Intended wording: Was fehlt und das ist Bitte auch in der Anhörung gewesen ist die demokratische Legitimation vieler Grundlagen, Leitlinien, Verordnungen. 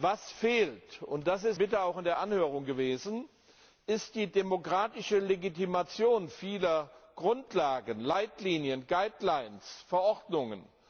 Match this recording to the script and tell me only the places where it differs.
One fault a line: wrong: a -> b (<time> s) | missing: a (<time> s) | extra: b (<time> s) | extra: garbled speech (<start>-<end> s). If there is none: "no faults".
no faults